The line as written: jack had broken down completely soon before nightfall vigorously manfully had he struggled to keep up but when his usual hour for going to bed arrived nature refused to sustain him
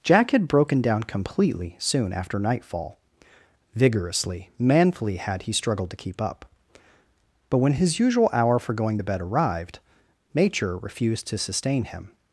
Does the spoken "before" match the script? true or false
false